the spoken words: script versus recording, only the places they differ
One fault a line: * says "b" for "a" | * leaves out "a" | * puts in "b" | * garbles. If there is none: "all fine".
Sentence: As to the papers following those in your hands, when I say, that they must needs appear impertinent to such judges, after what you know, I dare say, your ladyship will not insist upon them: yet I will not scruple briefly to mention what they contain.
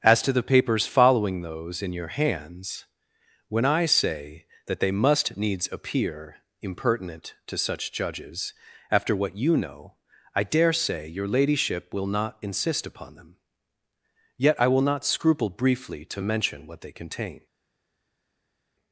all fine